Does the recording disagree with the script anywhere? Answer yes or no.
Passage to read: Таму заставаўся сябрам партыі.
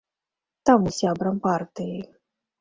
yes